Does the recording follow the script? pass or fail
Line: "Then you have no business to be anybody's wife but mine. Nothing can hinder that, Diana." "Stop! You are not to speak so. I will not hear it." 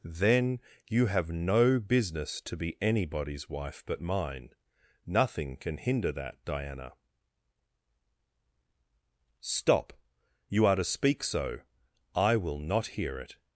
fail